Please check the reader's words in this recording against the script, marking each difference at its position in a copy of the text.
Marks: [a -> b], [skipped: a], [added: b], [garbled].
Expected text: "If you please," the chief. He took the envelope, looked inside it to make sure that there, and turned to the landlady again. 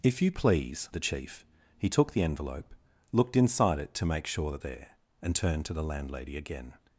"If you please," the chief. He took the envelope, looked inside it to make sure that there, and turned to the landlady again.